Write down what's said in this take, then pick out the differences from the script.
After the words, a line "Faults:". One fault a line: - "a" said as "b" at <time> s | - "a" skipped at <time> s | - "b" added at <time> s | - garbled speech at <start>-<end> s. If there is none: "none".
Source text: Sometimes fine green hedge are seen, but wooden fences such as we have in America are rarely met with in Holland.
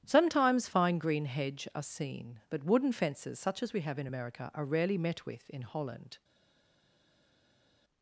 Sometimes fine green hedge are seen, but wooden fences such as we have in America are rarely met with in Holland.
Faults:
none